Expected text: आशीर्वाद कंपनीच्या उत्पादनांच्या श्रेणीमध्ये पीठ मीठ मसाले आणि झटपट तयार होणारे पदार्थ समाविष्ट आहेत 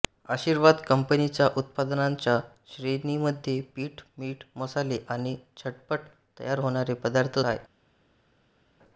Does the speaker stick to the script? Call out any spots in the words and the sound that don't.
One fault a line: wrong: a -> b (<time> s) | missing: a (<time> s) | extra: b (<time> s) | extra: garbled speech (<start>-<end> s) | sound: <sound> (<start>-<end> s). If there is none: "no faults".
missing: समाविष्ट (7.4 s)